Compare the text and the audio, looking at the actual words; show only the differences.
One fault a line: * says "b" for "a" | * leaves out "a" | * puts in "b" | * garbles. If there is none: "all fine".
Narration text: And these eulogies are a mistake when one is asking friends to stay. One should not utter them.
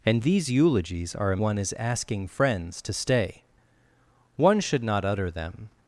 * leaves out "mistake when"